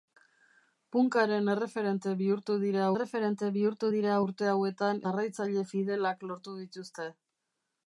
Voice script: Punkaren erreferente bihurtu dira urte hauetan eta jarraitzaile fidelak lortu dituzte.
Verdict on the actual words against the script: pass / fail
fail